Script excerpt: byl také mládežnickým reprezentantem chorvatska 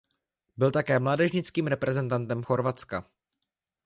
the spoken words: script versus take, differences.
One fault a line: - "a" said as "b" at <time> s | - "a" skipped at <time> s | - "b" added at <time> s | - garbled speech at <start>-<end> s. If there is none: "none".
none